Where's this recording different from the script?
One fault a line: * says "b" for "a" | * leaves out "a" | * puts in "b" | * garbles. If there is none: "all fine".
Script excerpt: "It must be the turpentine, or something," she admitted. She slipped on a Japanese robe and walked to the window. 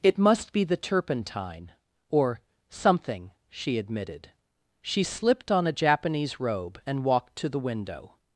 all fine